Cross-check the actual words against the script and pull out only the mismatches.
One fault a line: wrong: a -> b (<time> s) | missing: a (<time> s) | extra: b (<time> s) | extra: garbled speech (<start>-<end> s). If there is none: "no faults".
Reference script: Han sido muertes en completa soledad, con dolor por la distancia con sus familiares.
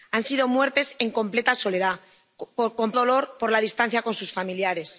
no faults